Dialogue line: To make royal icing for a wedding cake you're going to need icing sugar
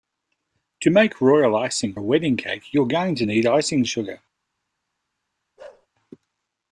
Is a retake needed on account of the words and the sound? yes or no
yes